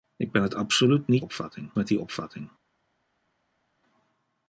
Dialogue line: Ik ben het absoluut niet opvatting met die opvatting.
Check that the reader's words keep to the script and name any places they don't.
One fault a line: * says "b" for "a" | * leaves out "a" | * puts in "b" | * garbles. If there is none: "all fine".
all fine